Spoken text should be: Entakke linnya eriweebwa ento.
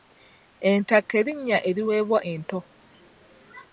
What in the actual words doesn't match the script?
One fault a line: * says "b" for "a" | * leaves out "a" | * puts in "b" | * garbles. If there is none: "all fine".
all fine